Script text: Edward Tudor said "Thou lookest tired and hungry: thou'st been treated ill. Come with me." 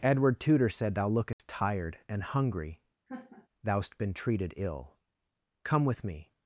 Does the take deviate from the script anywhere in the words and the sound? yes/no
yes